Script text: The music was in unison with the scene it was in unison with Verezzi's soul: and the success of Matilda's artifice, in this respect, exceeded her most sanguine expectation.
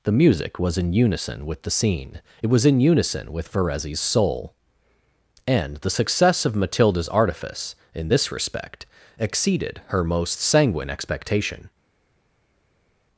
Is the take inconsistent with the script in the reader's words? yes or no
no